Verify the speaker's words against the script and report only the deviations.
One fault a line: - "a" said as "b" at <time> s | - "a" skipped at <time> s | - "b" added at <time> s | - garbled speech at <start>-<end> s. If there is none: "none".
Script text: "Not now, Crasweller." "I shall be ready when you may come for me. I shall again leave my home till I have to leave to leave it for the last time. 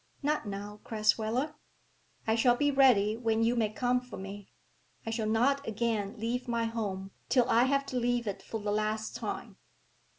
- "not" added at 5.3 s
- "to leave" skipped at 8.3 s